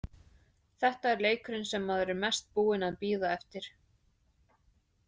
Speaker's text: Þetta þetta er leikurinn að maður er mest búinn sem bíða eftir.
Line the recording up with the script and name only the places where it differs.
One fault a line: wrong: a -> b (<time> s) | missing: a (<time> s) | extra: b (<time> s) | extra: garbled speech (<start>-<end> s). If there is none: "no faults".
missing: þetta (1.1 s)
wrong: að -> sem (1.7 s)
wrong: sem -> að (2.9 s)